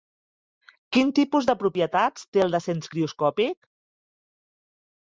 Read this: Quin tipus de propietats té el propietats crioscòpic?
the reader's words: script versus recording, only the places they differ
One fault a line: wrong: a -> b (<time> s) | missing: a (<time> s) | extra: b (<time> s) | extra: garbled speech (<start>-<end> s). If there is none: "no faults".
wrong: propietats -> descens (2.6 s)